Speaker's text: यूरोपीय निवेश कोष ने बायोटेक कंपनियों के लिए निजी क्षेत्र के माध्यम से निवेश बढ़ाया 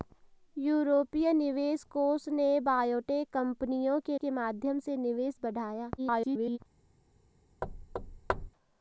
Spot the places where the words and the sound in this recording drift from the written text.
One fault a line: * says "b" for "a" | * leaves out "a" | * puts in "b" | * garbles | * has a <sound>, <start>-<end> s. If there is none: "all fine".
* leaves out "लिए निजी क्षेत्र"
* garbles
* has a thud, 7.6-8.5 s